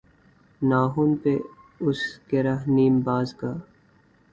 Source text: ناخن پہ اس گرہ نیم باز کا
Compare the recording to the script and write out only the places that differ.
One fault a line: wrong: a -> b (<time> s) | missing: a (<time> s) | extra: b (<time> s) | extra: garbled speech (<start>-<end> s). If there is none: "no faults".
no faults